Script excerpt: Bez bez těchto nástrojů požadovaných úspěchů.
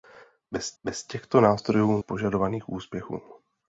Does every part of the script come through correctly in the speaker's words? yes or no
yes